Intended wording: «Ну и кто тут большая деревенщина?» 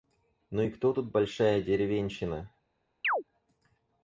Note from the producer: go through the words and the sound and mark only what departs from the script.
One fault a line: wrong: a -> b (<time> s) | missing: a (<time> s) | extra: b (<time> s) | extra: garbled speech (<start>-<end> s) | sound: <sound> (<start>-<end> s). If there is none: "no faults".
sound: chirp (3.0-3.2 s)